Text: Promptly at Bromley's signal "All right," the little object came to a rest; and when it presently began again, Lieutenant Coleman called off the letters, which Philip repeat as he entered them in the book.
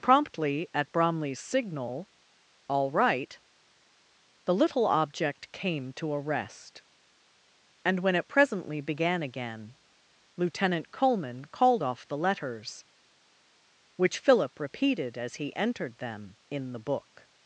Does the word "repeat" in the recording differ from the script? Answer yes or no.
yes